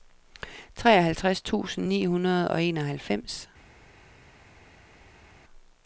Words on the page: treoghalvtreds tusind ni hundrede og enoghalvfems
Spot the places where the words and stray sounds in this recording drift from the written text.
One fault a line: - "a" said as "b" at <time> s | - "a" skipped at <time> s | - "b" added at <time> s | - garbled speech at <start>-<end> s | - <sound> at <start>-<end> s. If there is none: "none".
none